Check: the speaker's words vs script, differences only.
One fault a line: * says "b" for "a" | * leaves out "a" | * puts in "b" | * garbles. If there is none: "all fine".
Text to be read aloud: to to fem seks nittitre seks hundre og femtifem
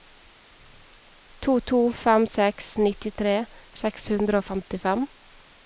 all fine